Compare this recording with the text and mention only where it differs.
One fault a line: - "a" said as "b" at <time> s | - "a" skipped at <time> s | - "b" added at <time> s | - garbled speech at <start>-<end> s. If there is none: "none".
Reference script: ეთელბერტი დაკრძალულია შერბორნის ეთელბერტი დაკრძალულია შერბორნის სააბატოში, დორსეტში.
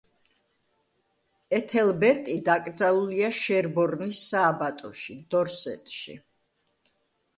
- "ეთელბერტი დაკრძალულია შერბორნის" skipped at 4.2 s